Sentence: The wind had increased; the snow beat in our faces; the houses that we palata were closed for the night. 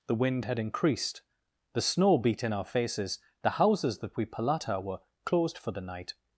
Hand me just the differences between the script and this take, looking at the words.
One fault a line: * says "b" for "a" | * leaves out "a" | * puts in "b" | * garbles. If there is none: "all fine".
all fine